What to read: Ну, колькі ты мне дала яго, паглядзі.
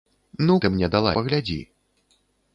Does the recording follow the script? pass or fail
fail